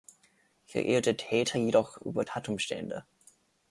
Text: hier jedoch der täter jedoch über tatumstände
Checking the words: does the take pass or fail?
fail